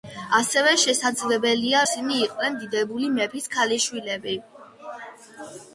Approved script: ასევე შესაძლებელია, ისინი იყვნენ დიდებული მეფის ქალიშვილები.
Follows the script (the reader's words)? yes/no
yes